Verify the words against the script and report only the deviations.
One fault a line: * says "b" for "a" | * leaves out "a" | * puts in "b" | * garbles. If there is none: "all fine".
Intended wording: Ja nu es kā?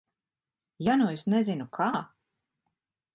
* puts in "nezinu"